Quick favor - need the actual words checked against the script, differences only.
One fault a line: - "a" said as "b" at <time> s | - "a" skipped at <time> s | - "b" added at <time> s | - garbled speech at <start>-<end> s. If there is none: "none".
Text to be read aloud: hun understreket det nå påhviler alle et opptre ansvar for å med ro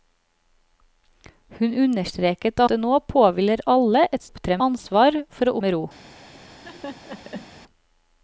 none